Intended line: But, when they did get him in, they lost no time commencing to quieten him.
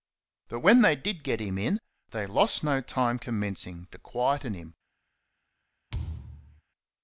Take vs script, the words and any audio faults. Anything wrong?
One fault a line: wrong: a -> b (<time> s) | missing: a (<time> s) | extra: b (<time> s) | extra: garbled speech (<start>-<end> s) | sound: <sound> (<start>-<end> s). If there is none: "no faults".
sound: thud (5.9-6.6 s)